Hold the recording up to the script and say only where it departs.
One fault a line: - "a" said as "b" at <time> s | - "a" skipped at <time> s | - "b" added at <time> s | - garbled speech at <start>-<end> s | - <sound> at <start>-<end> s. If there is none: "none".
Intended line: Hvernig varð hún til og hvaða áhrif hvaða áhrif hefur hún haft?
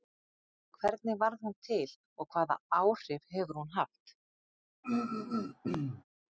- "hvaða áhrif" skipped at 3.3 s
- throat clearing at 4.8-6.0 s